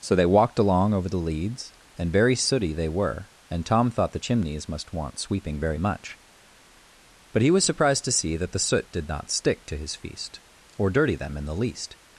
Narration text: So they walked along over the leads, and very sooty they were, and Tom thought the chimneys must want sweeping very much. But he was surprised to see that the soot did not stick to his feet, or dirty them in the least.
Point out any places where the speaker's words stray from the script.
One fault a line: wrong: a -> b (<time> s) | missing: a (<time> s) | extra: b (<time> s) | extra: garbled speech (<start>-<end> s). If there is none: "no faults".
wrong: feet -> feast (10.0 s)